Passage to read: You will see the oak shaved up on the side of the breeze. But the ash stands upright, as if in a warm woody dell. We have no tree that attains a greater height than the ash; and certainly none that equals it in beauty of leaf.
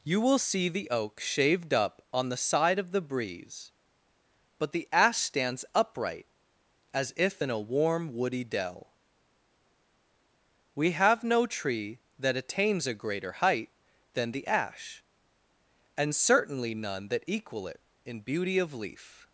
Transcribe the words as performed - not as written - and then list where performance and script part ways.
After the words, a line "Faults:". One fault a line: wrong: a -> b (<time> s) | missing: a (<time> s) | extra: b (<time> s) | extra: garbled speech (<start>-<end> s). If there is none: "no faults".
You will see the oak shaved up on the side of the breeze. But the ash stands upright, as if in a warm woody dell. We have no tree that attains a greater height than the ash; and certainly none that equal it in beauty of leaf.
Faults:
wrong: equals -> equal (17.3 s)